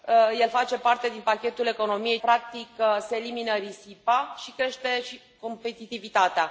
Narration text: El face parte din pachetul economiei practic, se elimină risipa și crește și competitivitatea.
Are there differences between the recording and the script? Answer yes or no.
no